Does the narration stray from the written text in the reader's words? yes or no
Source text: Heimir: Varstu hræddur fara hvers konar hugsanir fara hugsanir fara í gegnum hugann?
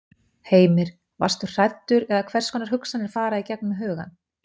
yes